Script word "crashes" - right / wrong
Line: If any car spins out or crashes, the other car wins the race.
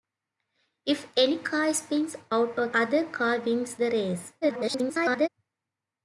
wrong